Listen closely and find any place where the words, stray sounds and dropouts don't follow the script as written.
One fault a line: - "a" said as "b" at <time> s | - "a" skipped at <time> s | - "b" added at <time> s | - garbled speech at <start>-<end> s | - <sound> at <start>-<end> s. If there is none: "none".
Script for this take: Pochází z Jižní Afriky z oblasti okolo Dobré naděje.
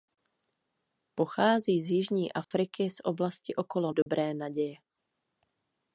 - dropout at 2.4-2.5 s
- dropout at 4.0-4.1 s